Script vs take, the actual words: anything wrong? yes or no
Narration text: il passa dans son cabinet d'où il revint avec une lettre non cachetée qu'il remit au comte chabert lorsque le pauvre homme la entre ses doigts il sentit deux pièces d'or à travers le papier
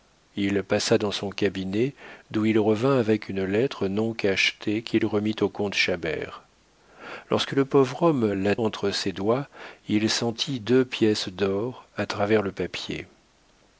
no